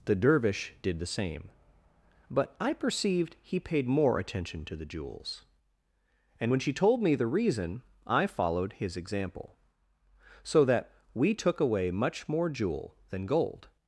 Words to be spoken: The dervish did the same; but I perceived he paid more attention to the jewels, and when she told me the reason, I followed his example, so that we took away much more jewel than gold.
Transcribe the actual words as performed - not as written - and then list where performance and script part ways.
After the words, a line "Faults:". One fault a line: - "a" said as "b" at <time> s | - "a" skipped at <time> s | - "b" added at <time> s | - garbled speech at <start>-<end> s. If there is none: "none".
The dervish did the same; but I perceived he paid more attention to the jewels, and when she told me the reason, I followed his example, so that we took away much more jewel than gold.
Faults:
none